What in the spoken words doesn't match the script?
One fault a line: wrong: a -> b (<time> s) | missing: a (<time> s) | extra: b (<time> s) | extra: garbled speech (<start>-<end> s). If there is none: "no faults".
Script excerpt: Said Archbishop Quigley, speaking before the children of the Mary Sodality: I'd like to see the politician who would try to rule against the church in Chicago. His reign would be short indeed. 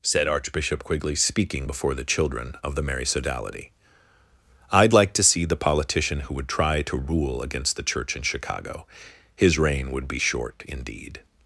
no faults